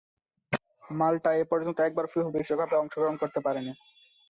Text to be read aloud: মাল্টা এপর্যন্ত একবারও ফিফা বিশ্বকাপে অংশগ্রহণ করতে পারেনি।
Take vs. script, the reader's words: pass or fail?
pass